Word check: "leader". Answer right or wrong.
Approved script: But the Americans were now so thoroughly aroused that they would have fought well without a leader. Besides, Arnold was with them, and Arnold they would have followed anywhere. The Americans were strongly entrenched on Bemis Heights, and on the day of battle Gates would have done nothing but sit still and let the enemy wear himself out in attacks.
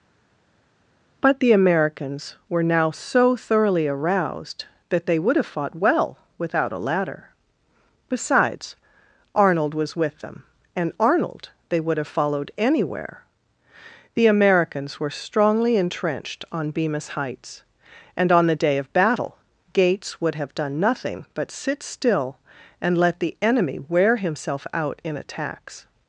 wrong